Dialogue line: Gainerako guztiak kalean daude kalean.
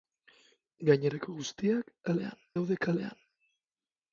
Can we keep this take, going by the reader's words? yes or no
yes